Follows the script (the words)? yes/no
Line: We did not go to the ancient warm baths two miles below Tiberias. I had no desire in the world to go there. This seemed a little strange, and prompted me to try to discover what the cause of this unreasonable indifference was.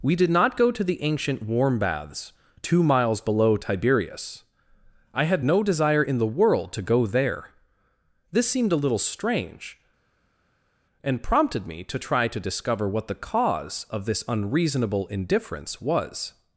yes